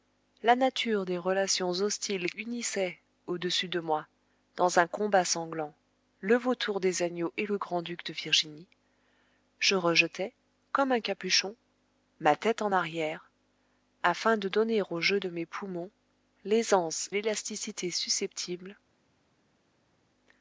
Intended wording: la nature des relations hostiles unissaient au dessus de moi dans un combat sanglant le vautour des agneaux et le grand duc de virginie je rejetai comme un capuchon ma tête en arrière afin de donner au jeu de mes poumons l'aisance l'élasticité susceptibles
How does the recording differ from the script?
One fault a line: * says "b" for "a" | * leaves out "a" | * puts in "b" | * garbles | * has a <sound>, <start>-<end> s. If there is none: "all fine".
all fine